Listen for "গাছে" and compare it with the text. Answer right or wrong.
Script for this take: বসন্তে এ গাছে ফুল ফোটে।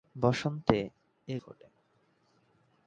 wrong